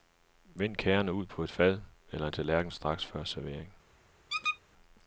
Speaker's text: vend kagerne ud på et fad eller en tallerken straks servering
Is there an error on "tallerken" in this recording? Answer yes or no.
no